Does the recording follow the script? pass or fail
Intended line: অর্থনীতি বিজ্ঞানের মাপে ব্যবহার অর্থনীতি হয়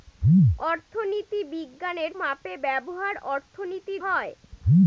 pass